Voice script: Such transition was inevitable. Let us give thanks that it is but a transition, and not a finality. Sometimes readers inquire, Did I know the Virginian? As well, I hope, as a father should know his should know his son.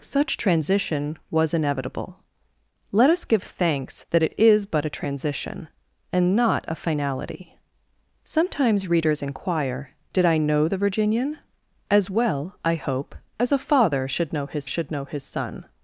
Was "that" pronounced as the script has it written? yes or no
yes